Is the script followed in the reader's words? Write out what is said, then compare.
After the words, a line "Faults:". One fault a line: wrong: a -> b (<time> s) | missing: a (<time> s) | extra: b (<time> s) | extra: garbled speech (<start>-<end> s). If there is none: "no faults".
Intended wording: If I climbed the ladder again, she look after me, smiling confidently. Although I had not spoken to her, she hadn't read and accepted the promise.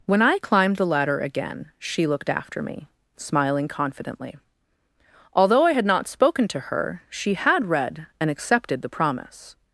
When I climbed the ladder again, she looked after me, smiling confidently. Although I had not spoken to her, she had read and accepted the promise.
Faults:
wrong: If -> When (0.1 s)
wrong: look -> looked (2.1 s)
wrong: hadn't -> had (7.3 s)